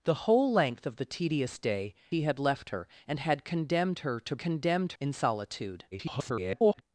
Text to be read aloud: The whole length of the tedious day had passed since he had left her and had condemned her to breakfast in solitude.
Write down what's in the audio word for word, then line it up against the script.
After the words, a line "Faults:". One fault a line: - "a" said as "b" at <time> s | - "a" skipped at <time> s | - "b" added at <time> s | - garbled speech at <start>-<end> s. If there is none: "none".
The whole length of the tedious day he had left her and had condemned her to condemned in solitude. [garbled]
Faults:
- "had passed since" skipped at 1.9 s
- "breakfast" said as "condemned" at 4.4 s
- garbled speech at 5.9-6.8 s